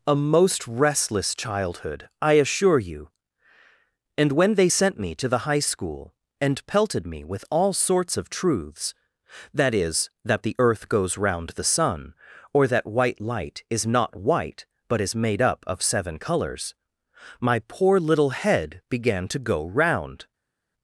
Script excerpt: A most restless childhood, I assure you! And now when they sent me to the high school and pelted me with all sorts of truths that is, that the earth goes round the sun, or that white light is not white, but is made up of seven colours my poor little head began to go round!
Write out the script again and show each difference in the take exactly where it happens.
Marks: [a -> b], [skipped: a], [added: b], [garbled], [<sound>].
A most restless childhood, I assure you! And [skipped: now] when they sent me to the high school and pelted me with all sorts of truths that is, that the earth goes round the sun, or that white light is not white, but is made up of seven colours my poor little head began to go round!